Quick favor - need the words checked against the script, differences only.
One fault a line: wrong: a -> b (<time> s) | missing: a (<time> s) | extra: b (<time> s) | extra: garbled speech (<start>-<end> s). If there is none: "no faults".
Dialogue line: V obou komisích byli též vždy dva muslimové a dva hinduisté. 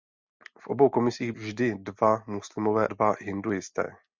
missing: byli též (1.3 s)
missing: a (2.9 s)